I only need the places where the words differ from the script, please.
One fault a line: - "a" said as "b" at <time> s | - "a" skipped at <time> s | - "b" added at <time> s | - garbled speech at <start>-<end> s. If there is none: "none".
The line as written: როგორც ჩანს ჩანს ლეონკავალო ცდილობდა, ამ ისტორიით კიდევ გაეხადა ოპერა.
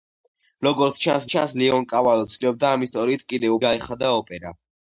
none